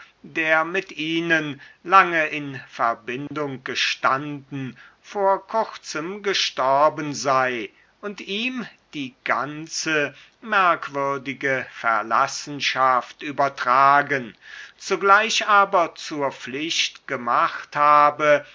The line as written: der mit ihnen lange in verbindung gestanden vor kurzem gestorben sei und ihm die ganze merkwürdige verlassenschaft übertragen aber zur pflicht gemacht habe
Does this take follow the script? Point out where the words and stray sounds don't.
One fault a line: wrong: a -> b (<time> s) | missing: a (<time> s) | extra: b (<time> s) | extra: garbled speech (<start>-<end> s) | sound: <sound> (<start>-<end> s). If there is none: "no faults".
sound: dropout (3.3-3.3 s)
extra: zugleich (14.8 s)